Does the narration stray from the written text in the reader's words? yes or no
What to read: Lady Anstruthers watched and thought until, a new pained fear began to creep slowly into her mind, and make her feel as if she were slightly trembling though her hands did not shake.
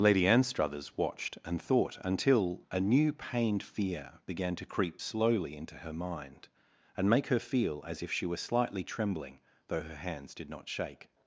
no